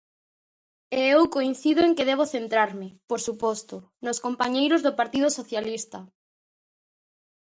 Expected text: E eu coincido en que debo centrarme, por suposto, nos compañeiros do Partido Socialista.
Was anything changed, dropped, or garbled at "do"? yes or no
no